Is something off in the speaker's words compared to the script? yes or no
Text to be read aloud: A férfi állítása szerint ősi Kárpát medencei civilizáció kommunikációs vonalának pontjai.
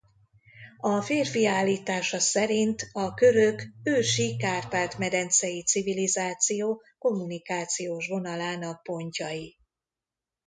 yes